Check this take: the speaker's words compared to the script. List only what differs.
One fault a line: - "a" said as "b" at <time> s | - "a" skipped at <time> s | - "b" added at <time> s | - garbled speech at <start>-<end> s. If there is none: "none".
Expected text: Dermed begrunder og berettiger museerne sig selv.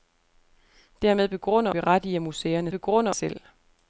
- "og" skipped at 1.7 s
- "sig" said as "begrunder" at 2.7 s